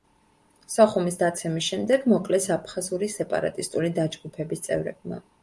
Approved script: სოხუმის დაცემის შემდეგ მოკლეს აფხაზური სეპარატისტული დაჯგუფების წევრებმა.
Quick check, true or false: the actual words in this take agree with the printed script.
true